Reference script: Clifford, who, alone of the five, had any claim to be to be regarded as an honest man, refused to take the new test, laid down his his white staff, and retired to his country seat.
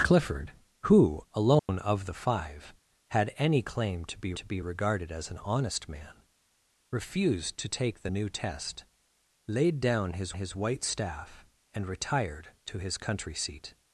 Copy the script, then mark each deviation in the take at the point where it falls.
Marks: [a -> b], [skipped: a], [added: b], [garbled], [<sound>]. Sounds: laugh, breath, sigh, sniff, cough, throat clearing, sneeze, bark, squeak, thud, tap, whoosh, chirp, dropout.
Clifford, who, alone [dropout] of the five, had any claim to be to be regarded as an honest man, refused to take the new test, laid down his his white staff, and retired to his country seat.